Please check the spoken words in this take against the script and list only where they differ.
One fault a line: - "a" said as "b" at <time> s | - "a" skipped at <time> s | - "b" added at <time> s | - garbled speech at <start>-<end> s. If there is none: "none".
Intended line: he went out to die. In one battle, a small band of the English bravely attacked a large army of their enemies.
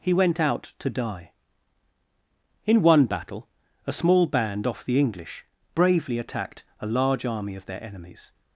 - "of" said as "off" at 4.7 s